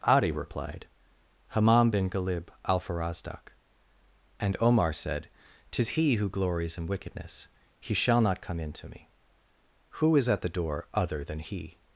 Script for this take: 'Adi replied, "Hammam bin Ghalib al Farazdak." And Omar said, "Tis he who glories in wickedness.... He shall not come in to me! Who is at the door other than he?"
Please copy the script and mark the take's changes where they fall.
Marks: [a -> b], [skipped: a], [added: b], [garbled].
'Adi replied, "Hammam bin Ghalib al Farazdak." And Omar said, "Tis he who glories in wickedness.... He shall not come in to me! Who is at the door other than he?"